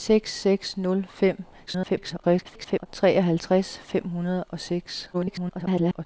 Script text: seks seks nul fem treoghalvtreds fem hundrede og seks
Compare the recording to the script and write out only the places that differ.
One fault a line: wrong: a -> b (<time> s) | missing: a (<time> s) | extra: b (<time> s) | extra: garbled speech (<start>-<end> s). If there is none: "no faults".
extra: garbled speech (1.7-2.9 s)
extra: garbled speech (5.1-6.1 s)